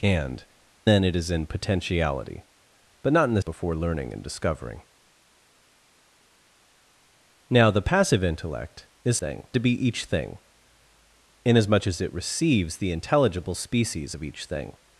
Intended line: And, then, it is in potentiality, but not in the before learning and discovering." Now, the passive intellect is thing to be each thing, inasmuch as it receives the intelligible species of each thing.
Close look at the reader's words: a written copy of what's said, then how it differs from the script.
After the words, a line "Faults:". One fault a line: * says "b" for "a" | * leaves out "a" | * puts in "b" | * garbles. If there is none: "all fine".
And, then, it is in potentiality, but not in the before learning and discovering." Now, the passive intellect is thing to be each thing, inasmuch as it receives the intelligible species of each thing.
Faults:
all fine